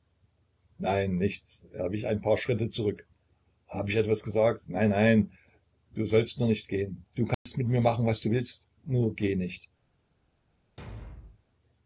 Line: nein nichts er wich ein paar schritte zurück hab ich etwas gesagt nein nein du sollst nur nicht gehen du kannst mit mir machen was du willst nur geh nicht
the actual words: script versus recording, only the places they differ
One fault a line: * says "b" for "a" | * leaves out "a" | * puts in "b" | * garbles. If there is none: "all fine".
all fine